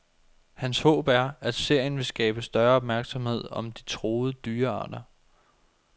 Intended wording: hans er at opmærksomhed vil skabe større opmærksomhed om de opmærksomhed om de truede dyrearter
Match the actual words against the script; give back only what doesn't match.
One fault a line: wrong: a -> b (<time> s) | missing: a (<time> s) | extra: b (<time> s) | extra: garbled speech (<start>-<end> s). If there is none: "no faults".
extra: håb (0.8 s)
wrong: opmærksomhed -> serien (1.5 s)
missing: opmærksomhed om de (3.8 s)